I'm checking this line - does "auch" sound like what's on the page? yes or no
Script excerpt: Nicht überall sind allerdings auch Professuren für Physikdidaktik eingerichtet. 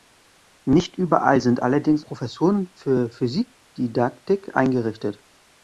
no